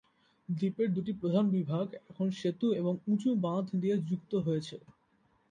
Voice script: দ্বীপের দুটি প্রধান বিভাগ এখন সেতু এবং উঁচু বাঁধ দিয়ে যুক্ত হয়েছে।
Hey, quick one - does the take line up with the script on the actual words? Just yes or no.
yes